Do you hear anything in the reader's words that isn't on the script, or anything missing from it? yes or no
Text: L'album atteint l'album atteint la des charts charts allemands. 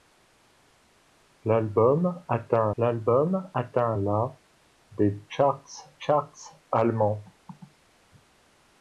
no